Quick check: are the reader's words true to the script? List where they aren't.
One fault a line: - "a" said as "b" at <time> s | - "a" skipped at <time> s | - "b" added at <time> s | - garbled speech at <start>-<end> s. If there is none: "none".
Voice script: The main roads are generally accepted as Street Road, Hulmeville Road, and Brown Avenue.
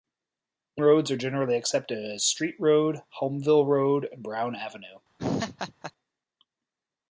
- "main" skipped at 0.8 s